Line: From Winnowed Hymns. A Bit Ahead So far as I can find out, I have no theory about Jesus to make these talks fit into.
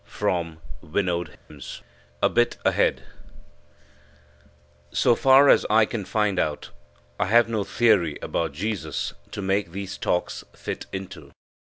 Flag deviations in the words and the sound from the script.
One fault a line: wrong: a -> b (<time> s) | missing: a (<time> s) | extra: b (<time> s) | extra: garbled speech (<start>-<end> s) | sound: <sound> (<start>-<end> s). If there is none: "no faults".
sound: dropout (1.4-1.5 s)